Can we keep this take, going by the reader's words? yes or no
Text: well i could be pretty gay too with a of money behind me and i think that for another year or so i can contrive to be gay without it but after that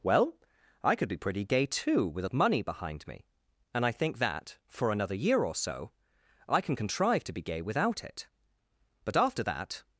yes